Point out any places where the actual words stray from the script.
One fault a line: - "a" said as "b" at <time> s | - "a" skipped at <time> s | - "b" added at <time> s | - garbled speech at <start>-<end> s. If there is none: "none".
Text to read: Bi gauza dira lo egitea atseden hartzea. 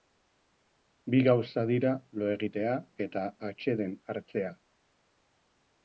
- "eta" added at 3.1 s